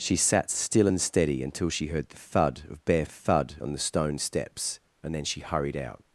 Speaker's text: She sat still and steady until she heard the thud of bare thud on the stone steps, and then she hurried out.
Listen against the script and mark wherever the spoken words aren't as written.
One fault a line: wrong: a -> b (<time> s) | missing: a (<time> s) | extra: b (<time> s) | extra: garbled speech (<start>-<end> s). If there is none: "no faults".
no faults